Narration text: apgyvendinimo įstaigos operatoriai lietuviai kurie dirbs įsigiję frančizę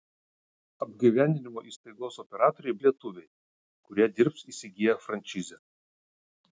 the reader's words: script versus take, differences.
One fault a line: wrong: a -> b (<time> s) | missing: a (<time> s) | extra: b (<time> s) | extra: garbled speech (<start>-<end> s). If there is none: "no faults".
no faults